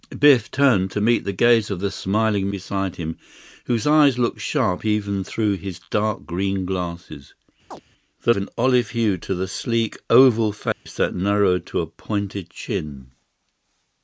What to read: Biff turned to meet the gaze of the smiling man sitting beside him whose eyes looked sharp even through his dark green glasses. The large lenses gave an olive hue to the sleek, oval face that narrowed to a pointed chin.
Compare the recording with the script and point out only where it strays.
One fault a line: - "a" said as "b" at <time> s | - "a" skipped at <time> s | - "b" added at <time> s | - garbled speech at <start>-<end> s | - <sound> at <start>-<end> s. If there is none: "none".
- "man sitting" skipped at 2.5 s
- chirp at 7.7-7.8 s
- "large lenses gave" skipped at 8.3 s
- dropout at 10.7-10.9 s